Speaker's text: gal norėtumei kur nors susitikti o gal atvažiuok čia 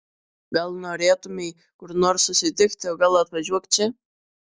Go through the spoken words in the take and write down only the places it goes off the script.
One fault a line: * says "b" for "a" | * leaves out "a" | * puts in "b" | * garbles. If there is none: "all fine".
all fine